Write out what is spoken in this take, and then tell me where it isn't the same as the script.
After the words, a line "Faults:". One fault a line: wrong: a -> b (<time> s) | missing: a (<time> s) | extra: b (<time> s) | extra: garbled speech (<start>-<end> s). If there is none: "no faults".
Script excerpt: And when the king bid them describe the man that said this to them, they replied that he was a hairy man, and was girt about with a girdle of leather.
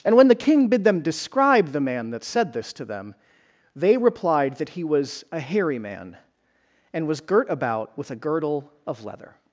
And when the king bid them describe the man that said this to them, they replied that he was a hairy man, and was girt about with a girdle of leather.
Faults:
no faults